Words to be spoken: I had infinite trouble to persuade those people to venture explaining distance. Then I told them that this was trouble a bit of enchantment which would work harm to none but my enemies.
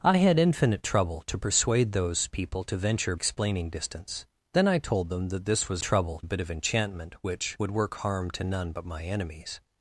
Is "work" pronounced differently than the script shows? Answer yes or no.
no